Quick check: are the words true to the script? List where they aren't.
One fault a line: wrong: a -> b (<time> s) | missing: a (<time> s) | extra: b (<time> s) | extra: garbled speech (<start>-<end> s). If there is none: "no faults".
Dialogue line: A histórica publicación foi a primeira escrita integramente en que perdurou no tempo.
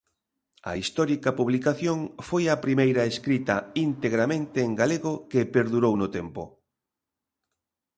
extra: galego (4.8 s)